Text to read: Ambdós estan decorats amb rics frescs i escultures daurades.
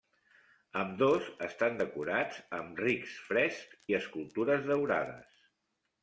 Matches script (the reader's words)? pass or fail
pass